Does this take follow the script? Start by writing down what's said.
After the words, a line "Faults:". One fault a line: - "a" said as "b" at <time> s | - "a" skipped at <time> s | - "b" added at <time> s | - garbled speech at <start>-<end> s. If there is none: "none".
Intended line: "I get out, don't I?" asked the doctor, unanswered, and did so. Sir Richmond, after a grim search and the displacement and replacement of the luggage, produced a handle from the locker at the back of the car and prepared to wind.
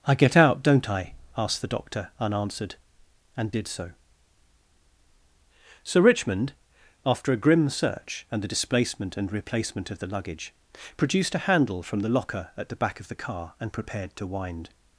"I get out, don't I?" asked the doctor, unanswered, and did so. Sir Richmond, after a grim search and the displacement and replacement of the luggage, produced a handle from the locker at the back of the car and prepared to wind.
Faults:
none